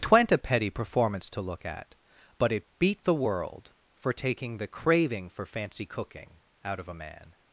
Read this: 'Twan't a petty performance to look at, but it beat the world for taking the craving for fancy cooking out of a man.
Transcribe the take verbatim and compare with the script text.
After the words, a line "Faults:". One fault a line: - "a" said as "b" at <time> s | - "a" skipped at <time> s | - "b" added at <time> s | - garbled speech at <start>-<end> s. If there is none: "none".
'Twan't a petty performance to look at, but it beat the world for taking the craving for fancy cooking out of a man.
Faults:
none